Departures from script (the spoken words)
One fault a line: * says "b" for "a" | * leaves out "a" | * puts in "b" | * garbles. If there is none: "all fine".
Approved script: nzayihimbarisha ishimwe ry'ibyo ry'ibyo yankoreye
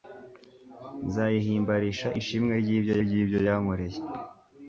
all fine